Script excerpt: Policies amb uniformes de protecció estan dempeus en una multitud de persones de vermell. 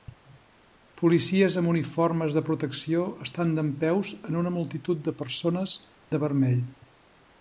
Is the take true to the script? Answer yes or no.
yes